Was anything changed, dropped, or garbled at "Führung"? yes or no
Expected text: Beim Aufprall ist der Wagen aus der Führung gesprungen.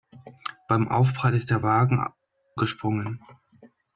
yes